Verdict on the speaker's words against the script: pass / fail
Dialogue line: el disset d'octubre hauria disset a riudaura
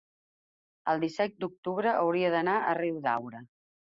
fail